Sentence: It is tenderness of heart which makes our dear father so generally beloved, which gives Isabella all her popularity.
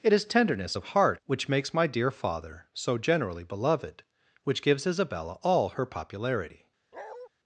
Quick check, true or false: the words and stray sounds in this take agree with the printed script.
false